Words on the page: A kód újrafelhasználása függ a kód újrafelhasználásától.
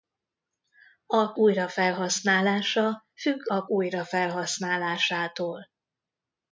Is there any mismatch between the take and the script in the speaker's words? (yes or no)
yes